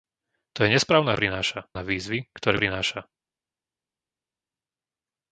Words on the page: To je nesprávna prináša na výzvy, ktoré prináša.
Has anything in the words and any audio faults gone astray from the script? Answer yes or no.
no